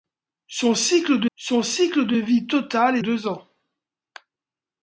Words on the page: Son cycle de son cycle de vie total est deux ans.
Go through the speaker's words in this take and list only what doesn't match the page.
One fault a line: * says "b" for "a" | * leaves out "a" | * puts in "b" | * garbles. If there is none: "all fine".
all fine